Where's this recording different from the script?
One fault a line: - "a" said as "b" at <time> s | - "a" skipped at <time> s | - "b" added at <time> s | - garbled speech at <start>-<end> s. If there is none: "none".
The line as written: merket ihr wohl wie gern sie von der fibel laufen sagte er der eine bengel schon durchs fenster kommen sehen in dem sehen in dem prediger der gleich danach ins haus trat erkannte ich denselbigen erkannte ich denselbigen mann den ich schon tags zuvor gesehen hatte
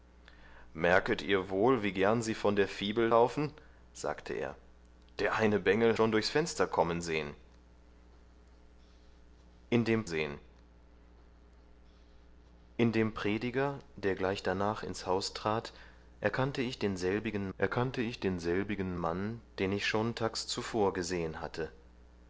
none